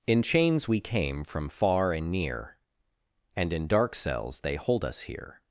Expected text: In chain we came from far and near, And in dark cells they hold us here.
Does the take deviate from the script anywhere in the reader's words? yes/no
yes